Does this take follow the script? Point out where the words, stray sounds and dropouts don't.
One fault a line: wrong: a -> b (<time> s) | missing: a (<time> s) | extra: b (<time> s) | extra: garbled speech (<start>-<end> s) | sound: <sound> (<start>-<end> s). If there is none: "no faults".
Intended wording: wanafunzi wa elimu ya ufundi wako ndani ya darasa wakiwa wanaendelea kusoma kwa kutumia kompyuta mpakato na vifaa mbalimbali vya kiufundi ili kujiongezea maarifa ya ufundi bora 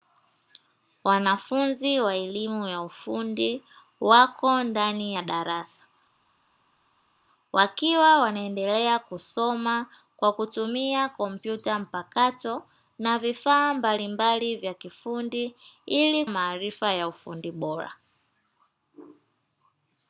missing: kujiongezea (16.2 s)